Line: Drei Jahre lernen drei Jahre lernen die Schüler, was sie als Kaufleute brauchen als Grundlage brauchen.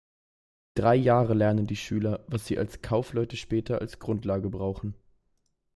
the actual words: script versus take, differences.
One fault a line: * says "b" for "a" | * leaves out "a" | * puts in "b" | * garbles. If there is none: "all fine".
* leaves out "drei Jahre lernen"
* says "später" for "brauchen"